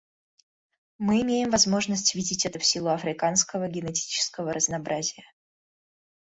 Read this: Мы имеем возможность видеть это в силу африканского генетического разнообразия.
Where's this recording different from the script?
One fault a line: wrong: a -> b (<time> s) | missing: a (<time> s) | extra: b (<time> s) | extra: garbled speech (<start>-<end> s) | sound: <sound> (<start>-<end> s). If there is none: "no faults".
no faults